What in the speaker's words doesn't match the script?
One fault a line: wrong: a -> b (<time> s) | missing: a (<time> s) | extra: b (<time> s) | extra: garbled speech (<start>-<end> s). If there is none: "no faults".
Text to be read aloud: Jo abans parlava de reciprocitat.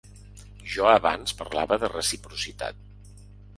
no faults